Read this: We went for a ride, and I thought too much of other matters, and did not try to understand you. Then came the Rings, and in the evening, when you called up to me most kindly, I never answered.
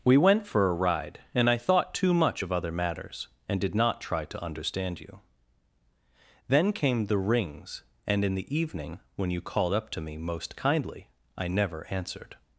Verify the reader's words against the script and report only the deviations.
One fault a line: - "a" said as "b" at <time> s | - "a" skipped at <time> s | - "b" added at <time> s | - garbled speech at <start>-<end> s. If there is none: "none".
none